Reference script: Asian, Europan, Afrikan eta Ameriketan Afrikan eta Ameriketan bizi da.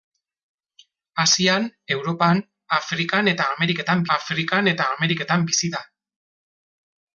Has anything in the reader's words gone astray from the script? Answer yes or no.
no